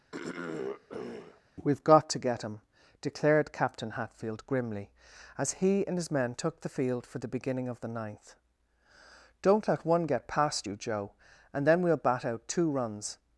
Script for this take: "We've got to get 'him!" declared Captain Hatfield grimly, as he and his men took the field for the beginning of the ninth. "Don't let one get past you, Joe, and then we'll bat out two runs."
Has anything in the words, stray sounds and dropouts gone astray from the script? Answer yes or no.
yes